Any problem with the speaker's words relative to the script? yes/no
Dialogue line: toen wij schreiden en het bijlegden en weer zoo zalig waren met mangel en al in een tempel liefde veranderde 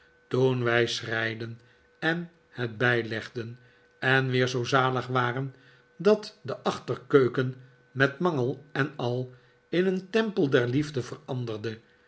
yes